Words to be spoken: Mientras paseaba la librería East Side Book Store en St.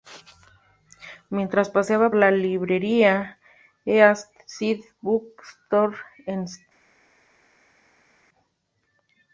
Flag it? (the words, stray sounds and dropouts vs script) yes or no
no